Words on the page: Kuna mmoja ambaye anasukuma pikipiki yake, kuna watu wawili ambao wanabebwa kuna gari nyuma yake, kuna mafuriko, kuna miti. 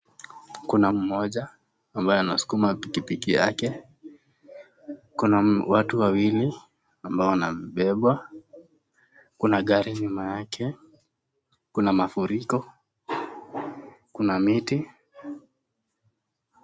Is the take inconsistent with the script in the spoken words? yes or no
no